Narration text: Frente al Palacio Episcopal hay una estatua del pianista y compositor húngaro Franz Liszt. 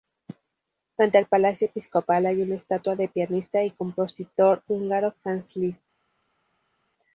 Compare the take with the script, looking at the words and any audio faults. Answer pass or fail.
pass